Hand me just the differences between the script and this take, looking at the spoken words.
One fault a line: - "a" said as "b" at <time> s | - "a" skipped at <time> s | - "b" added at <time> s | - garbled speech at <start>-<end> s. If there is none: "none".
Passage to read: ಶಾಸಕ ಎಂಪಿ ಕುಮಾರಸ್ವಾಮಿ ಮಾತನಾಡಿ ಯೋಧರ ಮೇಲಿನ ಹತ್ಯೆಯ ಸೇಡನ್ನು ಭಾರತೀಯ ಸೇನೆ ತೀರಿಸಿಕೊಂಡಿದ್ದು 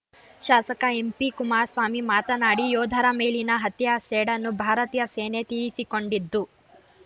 none